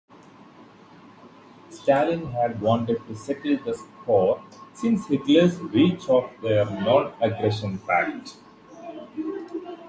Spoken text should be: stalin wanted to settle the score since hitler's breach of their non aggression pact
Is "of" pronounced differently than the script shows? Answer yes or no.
no